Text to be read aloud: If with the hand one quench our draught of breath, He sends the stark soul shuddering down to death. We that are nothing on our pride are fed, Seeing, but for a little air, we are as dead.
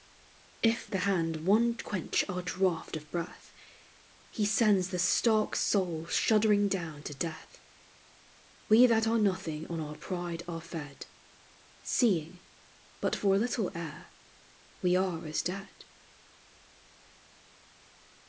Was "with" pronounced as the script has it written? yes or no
no